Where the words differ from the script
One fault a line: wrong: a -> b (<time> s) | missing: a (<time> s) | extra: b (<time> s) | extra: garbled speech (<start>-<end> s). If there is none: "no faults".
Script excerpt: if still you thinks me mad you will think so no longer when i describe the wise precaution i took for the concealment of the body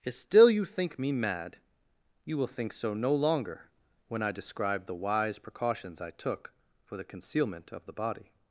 wrong: thinks -> think (0.7 s)
wrong: precaution -> precautions (5.4 s)